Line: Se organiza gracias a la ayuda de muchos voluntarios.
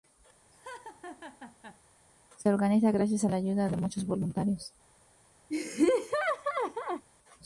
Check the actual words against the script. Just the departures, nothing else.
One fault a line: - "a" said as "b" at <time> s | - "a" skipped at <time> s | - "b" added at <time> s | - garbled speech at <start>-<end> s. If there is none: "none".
none